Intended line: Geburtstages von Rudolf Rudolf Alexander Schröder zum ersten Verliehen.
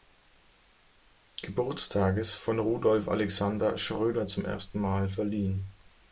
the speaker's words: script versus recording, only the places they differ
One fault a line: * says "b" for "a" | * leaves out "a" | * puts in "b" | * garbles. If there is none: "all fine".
* leaves out "Rudolf"
* puts in "Mal"